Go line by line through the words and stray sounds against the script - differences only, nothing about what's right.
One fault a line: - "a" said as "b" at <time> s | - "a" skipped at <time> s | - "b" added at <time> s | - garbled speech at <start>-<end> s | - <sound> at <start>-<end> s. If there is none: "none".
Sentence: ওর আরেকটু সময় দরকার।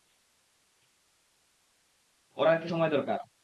none